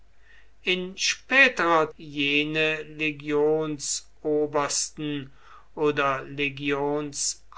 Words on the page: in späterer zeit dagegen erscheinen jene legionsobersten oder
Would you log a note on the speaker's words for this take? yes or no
yes